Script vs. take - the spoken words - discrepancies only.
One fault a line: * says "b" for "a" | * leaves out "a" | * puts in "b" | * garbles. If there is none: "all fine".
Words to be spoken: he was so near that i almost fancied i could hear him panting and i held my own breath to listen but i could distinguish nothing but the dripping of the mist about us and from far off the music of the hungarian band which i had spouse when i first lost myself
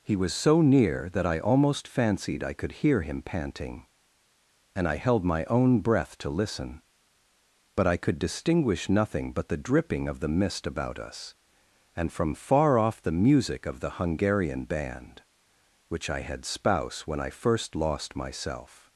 all fine